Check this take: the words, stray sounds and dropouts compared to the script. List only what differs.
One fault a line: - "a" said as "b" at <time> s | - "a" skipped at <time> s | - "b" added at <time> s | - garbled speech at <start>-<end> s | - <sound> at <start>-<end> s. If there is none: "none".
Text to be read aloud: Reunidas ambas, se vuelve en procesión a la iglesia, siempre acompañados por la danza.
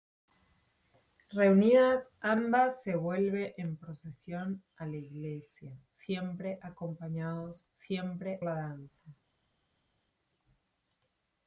- "por" said as "siempre" at 7.7 s